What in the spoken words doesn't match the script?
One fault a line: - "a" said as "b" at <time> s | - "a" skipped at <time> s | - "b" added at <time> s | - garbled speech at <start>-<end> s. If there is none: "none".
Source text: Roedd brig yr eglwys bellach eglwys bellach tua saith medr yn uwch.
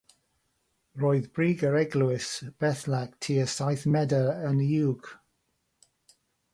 - "eglwys bellach" skipped at 3.2 s